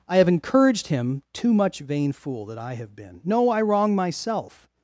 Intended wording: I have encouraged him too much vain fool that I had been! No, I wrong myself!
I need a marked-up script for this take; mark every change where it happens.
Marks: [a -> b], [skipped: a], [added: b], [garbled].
I have encouraged him too much vain fool that I [had -> have] been! No, I wrong myself!